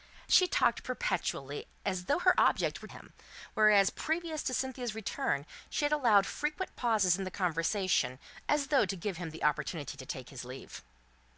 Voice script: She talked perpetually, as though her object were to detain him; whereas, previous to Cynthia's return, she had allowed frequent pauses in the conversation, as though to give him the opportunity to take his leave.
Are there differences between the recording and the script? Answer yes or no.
yes